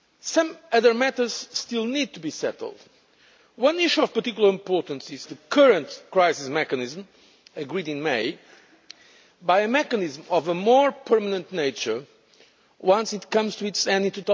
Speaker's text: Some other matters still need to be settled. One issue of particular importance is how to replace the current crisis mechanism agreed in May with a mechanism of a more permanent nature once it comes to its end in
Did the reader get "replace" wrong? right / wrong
wrong